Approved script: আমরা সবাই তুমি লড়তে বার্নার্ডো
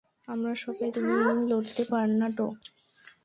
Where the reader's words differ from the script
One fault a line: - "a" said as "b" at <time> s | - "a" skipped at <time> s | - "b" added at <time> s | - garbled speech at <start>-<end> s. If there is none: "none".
none